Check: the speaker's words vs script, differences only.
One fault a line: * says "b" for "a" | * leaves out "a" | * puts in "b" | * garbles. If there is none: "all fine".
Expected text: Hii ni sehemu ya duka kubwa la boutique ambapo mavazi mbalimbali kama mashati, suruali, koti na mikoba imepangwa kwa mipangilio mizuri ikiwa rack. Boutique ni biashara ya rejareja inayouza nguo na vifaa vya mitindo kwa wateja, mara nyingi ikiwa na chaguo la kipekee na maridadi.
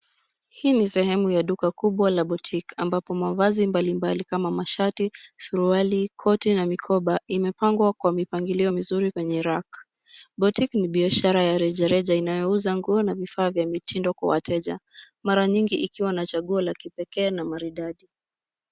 * says "kwenye" for "ikiwa"